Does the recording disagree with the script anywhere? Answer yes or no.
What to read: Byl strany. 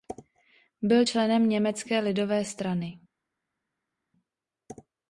yes